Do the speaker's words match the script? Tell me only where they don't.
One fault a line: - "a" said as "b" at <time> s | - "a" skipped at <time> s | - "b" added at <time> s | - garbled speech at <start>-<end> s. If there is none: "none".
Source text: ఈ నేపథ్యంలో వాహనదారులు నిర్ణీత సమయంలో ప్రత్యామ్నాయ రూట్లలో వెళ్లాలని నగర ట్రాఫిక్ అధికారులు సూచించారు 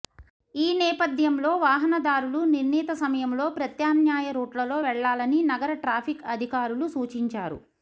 none